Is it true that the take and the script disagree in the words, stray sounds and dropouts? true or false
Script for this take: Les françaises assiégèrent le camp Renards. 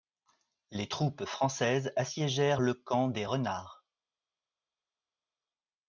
true